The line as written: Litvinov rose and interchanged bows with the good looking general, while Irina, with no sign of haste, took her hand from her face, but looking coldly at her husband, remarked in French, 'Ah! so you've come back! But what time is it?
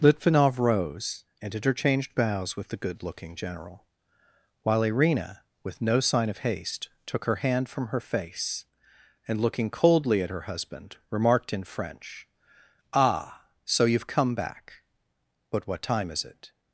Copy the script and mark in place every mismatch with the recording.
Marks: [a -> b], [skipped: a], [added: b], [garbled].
Litvinov rose and interchanged bows with the good looking general, while Irina, with no sign of haste, took her hand from her face, [but -> and] looking coldly at her husband, remarked in French, 'Ah! so you've come back! But what time is it?